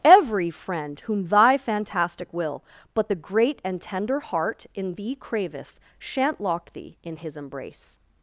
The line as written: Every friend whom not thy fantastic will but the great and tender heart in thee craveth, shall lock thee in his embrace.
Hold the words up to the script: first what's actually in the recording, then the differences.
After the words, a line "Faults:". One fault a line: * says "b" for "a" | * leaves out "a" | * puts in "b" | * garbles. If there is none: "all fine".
Every friend whom thy fantastic will but the great and tender heart in thee craveth, shan't lock thee in his embrace.
Faults:
* leaves out "not"
* says "shan't" for "shall"